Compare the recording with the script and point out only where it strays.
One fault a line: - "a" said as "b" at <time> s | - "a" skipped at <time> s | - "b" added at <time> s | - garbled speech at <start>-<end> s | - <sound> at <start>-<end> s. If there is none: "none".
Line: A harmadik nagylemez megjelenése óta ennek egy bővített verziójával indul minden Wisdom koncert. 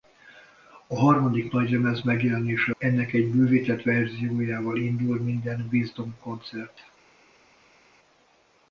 - "óta" skipped at 2.8 s